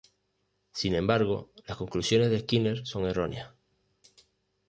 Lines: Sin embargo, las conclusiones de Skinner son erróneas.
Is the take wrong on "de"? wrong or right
right